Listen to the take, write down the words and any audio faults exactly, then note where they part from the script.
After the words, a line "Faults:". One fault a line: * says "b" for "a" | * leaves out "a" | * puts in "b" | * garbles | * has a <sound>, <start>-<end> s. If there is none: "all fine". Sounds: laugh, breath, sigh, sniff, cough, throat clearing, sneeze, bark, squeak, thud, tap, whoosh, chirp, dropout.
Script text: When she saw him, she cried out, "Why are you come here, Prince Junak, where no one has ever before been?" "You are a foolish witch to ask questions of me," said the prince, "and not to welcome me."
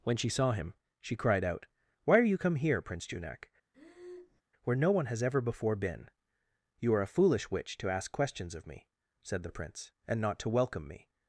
When she saw him, she cried out, "Why are you come here, Prince Junak, where no one has ever before been?" "You are a foolish witch to ask questions of me," said the prince, "and not to welcome me."
Faults:
* has a breath, 3.7-4.4 s